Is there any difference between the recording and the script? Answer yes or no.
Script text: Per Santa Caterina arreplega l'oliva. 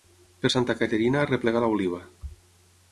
no